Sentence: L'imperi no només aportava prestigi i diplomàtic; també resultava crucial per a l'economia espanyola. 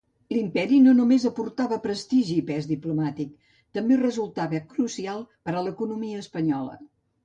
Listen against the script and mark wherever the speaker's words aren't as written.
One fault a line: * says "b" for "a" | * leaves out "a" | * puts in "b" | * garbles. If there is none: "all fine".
* puts in "pes"